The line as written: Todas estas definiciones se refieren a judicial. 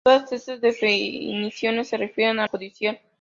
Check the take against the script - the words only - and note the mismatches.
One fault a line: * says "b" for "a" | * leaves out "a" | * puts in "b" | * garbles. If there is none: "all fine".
all fine